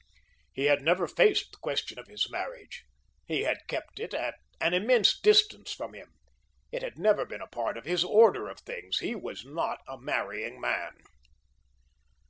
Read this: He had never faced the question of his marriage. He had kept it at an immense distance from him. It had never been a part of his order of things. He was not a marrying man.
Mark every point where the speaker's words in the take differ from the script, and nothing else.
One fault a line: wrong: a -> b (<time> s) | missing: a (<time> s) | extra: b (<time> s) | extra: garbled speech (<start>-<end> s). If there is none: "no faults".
no faults